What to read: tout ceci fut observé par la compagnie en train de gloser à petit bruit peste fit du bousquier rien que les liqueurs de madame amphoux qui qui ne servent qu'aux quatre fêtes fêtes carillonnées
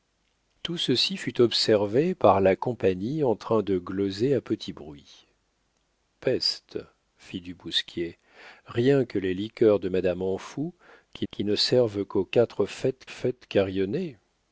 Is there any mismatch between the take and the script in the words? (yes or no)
no